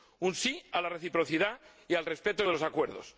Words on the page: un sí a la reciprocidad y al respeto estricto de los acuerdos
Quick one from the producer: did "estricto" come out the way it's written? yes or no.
no